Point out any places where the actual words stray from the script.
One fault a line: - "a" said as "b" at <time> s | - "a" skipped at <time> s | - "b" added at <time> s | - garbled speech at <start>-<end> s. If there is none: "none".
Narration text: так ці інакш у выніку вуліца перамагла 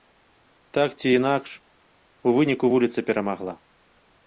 none